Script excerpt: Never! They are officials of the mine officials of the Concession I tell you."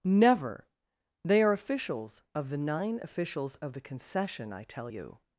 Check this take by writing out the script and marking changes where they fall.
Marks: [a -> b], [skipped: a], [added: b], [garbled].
Never! They are officials of the [mine -> nine] officials of the Concession I tell you."